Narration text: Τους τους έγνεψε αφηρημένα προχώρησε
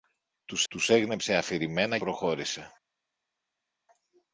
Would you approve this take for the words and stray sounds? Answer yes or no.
yes